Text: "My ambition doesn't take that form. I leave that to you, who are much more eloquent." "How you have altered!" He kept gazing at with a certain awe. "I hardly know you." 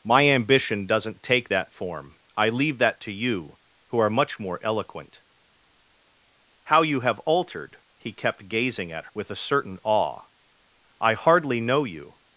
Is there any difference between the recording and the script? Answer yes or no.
no